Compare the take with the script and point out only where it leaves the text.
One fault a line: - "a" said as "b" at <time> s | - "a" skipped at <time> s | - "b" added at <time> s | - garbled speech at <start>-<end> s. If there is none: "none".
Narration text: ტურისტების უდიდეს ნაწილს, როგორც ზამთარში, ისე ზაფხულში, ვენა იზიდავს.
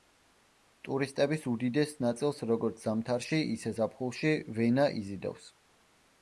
none